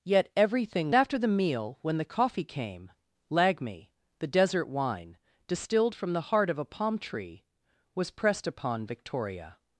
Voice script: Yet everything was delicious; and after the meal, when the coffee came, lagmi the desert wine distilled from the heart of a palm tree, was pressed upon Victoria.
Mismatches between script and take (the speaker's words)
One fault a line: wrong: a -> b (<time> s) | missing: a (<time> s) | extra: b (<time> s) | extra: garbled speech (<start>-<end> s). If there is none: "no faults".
missing: was delicious and (0.9 s)